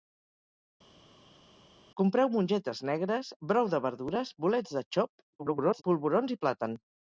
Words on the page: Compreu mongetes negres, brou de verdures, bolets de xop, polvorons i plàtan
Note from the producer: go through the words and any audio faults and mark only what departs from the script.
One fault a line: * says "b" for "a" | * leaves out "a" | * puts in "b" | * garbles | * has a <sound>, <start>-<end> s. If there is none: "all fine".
* garbles